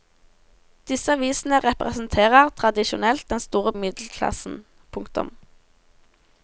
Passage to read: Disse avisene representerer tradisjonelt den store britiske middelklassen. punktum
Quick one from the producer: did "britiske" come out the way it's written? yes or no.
no